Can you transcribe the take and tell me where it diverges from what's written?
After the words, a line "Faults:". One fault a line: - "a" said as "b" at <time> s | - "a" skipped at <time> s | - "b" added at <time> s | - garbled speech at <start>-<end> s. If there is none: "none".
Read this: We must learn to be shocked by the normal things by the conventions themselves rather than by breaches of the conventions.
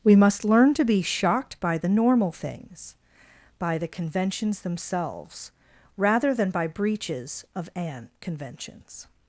We must learn to be shocked by the normal things by the conventions themselves rather than by breaches of an conventions.
Faults:
- "the" said as "an" at 7.8 s